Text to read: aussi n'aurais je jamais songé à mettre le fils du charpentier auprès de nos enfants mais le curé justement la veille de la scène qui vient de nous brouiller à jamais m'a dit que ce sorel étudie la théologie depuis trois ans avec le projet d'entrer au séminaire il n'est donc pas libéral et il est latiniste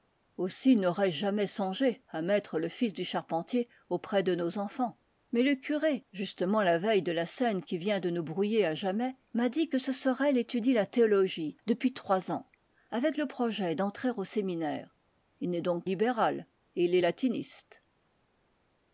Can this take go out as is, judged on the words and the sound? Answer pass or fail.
fail